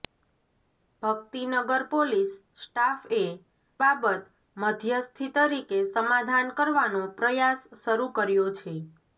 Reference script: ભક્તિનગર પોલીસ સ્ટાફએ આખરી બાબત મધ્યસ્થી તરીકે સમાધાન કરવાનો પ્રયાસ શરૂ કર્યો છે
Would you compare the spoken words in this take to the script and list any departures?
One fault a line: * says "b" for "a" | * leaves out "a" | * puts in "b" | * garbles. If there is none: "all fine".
* leaves out "આખરી"